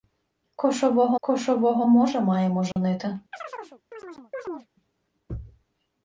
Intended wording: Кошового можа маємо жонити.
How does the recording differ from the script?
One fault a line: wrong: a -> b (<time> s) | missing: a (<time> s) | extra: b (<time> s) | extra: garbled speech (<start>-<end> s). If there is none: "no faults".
extra: кошового (1.2 s)